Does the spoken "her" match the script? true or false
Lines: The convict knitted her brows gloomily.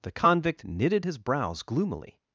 false